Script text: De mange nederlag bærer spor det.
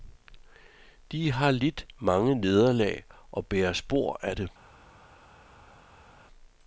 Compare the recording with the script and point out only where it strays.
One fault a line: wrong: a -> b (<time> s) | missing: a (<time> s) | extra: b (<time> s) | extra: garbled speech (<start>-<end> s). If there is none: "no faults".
extra: har lidt (1.3 s)
extra: og (3.3 s)
extra: af (4.2 s)